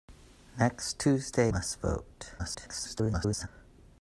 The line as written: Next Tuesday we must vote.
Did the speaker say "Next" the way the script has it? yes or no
yes